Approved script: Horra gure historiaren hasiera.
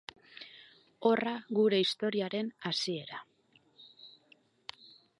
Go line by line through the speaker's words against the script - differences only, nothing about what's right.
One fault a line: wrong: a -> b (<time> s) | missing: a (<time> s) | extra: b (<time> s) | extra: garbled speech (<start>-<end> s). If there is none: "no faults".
no faults